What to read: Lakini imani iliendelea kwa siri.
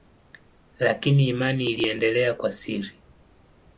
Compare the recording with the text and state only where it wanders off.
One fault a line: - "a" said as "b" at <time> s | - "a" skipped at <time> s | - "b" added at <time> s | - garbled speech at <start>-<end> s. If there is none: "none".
none